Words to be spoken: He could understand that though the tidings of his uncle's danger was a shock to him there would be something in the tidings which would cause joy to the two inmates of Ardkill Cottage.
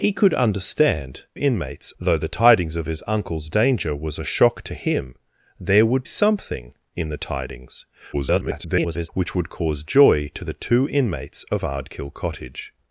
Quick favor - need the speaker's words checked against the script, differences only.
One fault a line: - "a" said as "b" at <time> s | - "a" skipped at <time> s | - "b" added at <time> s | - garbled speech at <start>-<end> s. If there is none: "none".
- "that" said as "inmates" at 1.4 s
- "be" skipped at 6.0 s
- garbled speech at 8.1-9.1 s